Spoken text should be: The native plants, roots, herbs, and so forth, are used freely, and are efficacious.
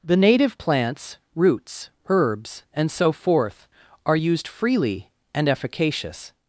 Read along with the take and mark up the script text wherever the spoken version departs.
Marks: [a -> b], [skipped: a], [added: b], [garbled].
The native plants, roots, herbs, and so forth, are used freely, and [skipped: are] efficacious.